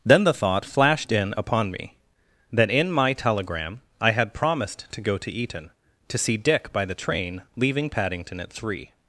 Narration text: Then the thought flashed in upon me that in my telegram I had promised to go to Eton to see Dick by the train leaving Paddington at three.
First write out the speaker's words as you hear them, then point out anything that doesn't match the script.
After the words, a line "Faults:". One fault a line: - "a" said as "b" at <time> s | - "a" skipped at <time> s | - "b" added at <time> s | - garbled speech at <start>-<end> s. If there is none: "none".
Then the thought flashed in upon me that in my telegram I had promised to go to Eton to see Dick by the train leaving Paddington at three.
Faults:
none